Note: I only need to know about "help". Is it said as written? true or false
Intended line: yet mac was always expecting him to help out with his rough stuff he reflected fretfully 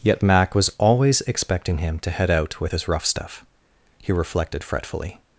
false